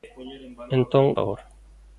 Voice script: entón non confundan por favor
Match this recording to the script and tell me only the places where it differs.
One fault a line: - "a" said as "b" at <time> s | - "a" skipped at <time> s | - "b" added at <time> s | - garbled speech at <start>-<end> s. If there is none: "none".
- "non confundan por" skipped at 1.1 s